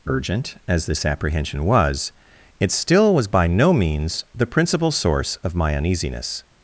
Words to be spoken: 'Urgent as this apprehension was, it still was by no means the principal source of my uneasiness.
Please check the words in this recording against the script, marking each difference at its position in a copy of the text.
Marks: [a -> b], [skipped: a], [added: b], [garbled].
'Urgent as this apprehension was, it still was by no means the principal source of my uneasiness.